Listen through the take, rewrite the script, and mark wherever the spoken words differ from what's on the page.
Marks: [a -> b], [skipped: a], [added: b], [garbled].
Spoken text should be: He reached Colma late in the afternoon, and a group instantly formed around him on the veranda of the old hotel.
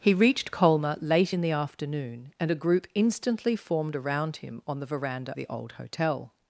He reached Colma late in the afternoon, and a group instantly formed around him on the veranda [skipped: of] the old hotel.